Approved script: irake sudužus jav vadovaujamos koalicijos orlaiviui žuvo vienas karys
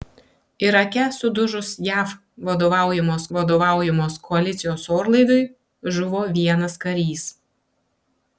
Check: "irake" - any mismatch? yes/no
no